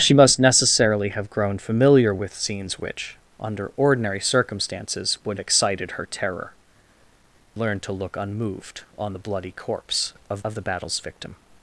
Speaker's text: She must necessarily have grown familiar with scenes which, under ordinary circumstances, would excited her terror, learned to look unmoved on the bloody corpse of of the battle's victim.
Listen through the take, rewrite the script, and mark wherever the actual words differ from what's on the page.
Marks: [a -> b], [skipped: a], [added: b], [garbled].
She must necessarily have grown familiar with scenes which, under ordinary circumstances, would excited her terror, learned to look unmoved on the bloody corpse of of the battle's victim.